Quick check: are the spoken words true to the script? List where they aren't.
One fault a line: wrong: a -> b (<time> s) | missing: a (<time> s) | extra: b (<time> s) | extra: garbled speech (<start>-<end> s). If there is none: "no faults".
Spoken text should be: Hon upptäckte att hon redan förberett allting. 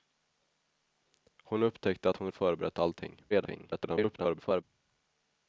missing: redan (2.3 s)
extra: garbled speech (3.3-4.6 s)